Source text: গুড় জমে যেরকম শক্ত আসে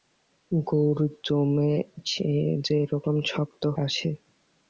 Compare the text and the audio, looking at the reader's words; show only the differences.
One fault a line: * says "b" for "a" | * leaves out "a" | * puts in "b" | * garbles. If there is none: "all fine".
all fine